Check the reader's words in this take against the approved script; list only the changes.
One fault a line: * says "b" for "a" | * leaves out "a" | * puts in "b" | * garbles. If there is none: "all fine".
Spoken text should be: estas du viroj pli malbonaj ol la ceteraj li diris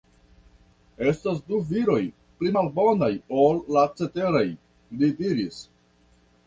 all fine